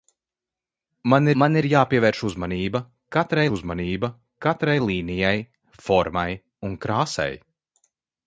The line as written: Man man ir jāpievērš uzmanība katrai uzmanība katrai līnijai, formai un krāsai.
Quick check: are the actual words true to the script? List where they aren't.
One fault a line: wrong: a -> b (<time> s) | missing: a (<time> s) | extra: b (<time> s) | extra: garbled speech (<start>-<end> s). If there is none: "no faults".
no faults